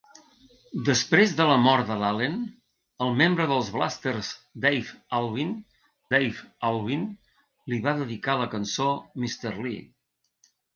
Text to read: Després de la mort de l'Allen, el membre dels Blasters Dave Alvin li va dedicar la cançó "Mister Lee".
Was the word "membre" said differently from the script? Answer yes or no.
no